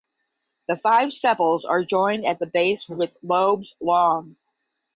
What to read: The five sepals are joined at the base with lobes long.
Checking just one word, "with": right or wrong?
right